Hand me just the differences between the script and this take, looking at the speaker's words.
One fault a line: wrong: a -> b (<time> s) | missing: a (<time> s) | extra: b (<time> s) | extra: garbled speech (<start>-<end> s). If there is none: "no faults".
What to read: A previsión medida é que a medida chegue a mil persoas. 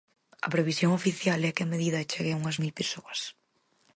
wrong: medida -> oficial (1.0 s)
extra: unhas (2.4 s)